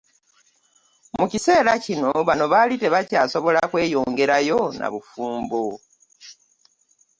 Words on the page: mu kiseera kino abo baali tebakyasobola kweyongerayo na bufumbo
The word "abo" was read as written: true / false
false